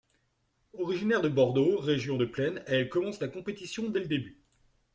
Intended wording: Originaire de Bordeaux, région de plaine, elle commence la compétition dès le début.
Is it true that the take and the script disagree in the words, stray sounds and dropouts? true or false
false